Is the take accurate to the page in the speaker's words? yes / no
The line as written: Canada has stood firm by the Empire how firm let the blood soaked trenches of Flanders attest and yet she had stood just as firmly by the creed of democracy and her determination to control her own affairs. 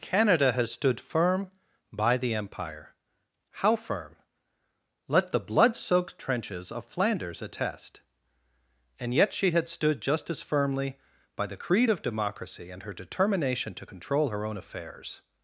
yes